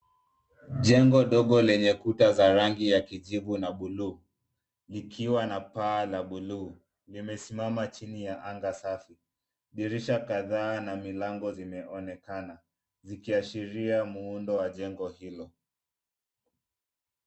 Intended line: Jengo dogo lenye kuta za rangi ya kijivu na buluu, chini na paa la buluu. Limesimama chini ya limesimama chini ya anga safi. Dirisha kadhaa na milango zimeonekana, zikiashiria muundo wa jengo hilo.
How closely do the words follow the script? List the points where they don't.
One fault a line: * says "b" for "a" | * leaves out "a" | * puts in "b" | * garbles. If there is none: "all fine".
* says "likiwa" for "chini"
* leaves out "limesimama chini ya"